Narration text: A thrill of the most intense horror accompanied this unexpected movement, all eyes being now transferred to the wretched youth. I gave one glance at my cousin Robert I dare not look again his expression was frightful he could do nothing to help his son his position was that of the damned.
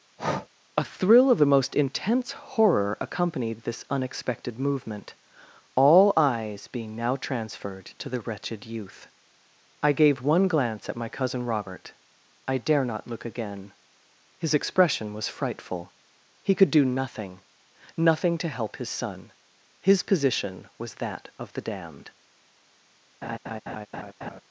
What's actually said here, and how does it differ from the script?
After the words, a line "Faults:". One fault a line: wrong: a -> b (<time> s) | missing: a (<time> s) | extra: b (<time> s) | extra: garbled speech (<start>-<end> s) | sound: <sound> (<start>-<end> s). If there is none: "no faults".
A thrill of the most intense horror accompanied this unexpected movement, all eyes being now transferred to the wretched youth. I gave one glance at my cousin Robert I dare not look again his expression was frightful he could do nothing nothing to help his son his position was that of the damned.
Faults:
sound: breath (0.2-0.5 s)
extra: nothing (17.9 s)
sound: laugh (23.2-24.4 s)